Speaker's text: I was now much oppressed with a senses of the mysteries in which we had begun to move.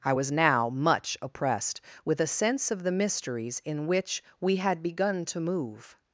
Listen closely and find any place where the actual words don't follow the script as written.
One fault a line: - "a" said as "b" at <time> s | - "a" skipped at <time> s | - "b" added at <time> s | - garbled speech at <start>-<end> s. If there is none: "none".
- "senses" said as "sense" at 2.3 s